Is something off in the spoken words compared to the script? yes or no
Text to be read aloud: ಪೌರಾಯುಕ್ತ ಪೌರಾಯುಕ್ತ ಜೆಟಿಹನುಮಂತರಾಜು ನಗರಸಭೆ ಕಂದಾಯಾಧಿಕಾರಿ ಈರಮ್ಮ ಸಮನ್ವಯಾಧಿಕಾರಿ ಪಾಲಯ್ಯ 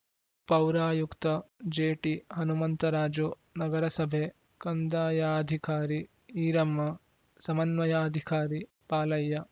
yes